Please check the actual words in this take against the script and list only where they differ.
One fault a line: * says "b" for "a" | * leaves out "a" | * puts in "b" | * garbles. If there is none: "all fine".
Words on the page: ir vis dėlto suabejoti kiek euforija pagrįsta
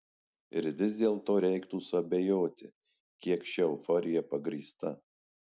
* puts in "reiktų"
* puts in "ši"